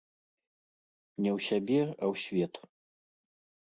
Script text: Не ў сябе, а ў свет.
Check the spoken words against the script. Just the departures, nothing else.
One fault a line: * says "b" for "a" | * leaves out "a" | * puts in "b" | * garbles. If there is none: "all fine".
all fine